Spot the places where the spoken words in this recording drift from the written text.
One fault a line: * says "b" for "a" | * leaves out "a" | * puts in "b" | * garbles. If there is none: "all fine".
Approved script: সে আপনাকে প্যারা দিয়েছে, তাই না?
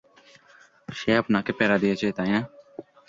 all fine